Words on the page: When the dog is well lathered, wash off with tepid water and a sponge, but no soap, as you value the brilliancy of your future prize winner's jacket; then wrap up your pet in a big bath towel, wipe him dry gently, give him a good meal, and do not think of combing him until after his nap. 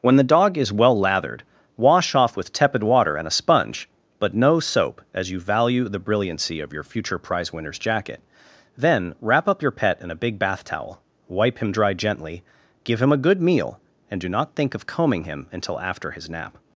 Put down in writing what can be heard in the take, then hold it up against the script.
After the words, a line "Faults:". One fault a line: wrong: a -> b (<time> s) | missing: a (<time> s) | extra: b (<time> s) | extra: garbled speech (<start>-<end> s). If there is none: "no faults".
When the dog is well lathered, wash off with tepid water and a sponge, but no soap, as you value the brilliancy of your future prize winner's jacket; then wrap up your pet in a big bath towel, wipe him dry gently, give him a good meal, and do not think of combing him until after his nap.
Faults:
no faults